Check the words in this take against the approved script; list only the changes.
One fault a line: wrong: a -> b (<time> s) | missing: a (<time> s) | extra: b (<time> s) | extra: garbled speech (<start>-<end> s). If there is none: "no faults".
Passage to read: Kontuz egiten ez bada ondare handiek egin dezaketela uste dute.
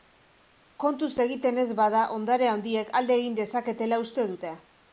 extra: alde (3.0 s)